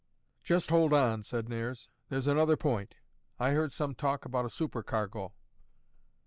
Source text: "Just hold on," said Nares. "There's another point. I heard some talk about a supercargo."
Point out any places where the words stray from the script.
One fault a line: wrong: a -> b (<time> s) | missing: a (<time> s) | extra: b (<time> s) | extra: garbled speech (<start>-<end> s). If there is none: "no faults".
no faults